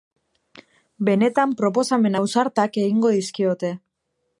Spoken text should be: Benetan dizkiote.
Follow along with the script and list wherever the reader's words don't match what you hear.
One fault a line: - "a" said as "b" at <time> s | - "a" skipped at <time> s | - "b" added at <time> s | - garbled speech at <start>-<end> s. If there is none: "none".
- "proposamen ausartak egingo" added at 1.6 s